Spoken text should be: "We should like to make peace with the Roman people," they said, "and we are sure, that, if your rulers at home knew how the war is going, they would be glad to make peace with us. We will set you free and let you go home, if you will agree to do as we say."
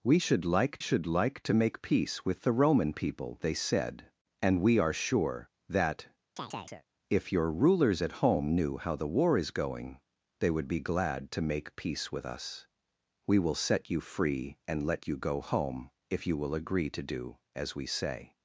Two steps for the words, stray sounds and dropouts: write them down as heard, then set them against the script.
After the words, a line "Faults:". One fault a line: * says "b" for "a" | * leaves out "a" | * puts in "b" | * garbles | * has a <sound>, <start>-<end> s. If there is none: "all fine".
"We should like should like to make peace with the Roman people," they said, "and we are sure, that, if your rulers at home knew how the war is going, they would be glad to make peace with us. We will set you free and let you go home, if you will agree to do as we say."
Faults:
* puts in "should like"
* has a chirp, 6.4-6.9 s